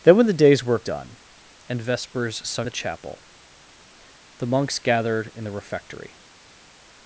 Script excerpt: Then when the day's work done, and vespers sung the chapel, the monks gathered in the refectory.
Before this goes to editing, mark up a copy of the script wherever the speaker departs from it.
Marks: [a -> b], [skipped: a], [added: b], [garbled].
Then when the day's work done, and vespers sung the chapel, the monks gathered in the refectory.